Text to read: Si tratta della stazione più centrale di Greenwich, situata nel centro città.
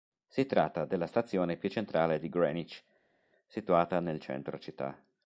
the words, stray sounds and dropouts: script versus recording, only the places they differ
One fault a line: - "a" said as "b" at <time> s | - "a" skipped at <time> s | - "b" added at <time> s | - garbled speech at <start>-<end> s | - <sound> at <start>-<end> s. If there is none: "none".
none